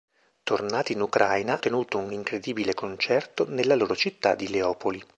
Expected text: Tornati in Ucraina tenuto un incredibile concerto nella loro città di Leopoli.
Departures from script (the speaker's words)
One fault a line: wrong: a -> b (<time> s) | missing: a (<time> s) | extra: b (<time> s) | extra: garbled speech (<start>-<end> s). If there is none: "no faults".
no faults